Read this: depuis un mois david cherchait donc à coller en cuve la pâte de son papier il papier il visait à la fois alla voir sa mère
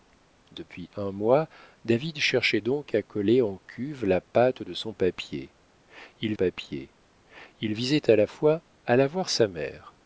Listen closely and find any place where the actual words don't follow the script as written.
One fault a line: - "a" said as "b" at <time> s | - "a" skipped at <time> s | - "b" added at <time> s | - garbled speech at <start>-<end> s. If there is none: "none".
none